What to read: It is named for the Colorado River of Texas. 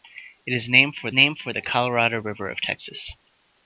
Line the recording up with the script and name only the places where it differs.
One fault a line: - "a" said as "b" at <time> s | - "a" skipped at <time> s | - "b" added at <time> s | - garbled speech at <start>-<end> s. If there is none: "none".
- "named for" added at 1.1 s